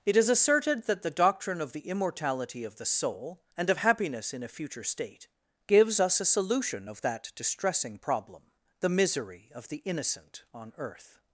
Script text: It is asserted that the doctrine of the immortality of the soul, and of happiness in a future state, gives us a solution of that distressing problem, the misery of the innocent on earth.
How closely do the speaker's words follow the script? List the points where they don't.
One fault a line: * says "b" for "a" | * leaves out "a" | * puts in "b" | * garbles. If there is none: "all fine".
all fine